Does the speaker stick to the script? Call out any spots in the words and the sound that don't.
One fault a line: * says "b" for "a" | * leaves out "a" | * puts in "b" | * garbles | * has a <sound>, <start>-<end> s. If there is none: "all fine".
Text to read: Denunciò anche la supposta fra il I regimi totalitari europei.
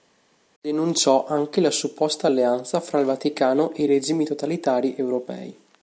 * puts in "alleanza"
* puts in "Vaticano e"